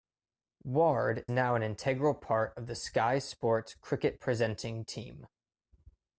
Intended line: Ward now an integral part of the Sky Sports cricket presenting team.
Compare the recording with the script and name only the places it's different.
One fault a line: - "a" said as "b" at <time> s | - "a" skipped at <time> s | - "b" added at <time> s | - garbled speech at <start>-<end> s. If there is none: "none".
none